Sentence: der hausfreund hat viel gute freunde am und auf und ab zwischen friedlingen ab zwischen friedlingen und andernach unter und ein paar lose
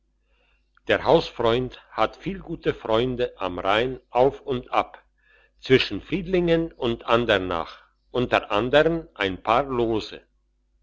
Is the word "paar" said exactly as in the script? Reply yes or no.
yes